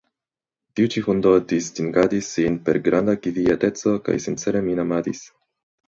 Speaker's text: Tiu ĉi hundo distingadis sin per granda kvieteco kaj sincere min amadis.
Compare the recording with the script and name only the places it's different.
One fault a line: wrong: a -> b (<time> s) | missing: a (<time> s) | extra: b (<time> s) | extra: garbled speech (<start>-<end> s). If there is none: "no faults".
no faults